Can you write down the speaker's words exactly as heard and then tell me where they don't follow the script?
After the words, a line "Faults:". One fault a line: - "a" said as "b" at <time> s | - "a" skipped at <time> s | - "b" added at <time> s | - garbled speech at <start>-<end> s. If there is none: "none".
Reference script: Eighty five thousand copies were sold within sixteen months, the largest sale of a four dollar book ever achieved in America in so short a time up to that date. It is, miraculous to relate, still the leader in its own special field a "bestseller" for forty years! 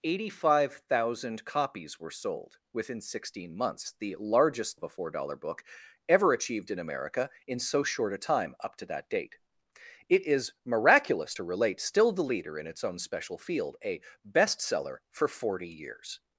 Eighty five thousand copies were sold within sixteen months, the largest of a four dollar book ever achieved in America in so short a time up to that date. It is, miraculous to relate, still the leader in its own special field a "bestseller" for forty years!
Faults:
- "sale" skipped at 4.8 s